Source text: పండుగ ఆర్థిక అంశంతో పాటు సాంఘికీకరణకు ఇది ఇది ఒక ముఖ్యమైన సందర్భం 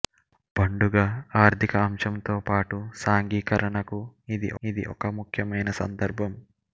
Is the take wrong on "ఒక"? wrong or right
right